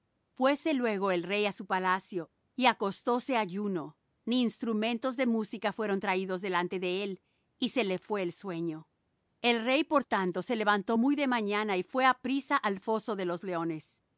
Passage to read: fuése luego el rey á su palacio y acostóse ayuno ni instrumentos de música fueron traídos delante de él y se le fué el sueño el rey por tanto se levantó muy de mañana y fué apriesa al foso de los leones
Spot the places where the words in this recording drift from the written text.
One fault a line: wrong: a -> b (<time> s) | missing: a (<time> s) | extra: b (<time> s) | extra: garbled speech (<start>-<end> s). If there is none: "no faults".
no faults